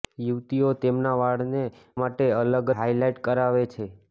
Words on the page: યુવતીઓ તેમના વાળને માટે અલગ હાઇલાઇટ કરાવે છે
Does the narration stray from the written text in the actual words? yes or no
no